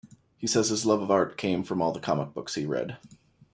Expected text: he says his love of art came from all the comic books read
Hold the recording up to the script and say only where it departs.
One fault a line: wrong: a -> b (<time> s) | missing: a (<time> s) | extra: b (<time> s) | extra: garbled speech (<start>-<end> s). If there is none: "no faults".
extra: he (2.5 s)